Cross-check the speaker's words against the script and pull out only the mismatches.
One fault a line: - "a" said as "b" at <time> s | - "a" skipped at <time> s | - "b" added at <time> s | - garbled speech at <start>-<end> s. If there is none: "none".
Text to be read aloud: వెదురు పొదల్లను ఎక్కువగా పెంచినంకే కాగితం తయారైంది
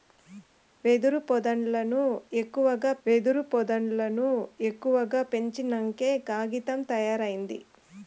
- "వెదురు పొదల్లను ఎక్కువగా" added at 3.1 s